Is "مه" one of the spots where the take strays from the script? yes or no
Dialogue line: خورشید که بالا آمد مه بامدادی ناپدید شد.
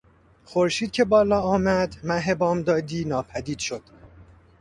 no